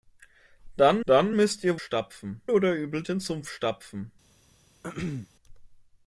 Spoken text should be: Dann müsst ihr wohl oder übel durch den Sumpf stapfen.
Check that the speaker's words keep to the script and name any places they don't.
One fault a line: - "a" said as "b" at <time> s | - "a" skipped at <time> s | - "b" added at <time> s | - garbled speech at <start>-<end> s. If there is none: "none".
- "dann" added at 1.1 s
- "wohl" said as "stapfen" at 1.8 s
- "durch" skipped at 3.0 s